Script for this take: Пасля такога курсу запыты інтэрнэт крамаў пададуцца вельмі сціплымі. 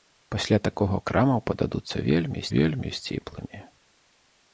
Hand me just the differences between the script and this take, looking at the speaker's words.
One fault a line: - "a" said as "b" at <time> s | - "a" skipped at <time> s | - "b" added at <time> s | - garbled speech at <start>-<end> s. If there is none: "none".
- "курсу запыты інтэрнэт" skipped at 1.0 s
- "вельмі" added at 2.5 s